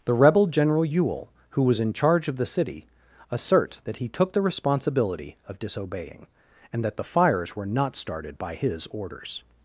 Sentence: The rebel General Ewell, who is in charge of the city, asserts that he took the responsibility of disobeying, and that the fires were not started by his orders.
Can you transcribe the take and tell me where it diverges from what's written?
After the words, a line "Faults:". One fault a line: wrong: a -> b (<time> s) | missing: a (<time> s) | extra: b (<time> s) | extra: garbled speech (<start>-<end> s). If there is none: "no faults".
The rebel General Ewell, who was in charge of the city, asserts that he took the responsibility of disobeying, and that the fires were not started by his orders.
Faults:
wrong: is -> was (1.6 s)